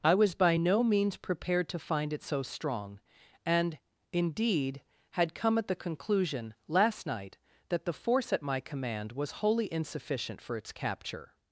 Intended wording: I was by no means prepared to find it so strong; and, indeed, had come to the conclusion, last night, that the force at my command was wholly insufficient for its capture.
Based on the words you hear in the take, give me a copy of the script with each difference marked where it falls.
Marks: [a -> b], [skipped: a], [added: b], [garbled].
I was by no means prepared to find it so strong; and, indeed, had come [to -> at] the conclusion, last night, that the force at my command was wholly insufficient for its capture.